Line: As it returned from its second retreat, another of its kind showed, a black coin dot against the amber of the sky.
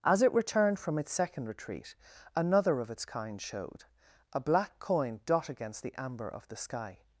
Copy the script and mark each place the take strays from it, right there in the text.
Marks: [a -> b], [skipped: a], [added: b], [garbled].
As it returned from its second retreat, another of its kind showed, a black coin dot against the amber of the sky.